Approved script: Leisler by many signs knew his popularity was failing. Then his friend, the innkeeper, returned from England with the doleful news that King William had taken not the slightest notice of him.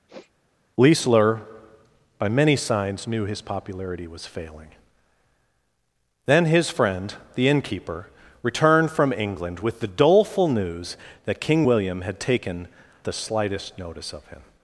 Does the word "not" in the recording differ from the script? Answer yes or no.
yes